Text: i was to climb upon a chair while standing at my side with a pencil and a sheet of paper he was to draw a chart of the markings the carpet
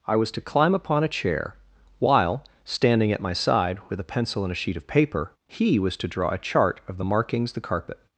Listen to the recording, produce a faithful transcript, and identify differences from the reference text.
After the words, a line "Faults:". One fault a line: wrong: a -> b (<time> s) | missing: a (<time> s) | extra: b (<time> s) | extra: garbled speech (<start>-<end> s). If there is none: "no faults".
i was to climb upon a chair while standing at my side with a pencil and a sheet of paper he was to draw a chart of the markings the carpet
Faults:
no faults